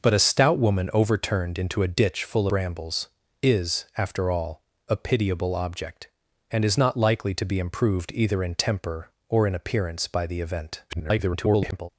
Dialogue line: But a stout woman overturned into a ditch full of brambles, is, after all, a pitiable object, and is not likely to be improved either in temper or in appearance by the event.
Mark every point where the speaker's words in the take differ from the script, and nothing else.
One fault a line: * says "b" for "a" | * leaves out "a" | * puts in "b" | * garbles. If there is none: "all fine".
* leaves out "of"
* garbles